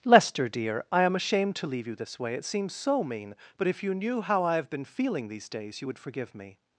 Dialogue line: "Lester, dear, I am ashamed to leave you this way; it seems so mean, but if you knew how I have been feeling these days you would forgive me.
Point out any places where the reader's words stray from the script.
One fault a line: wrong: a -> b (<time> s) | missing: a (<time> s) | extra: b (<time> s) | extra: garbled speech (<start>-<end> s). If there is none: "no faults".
no faults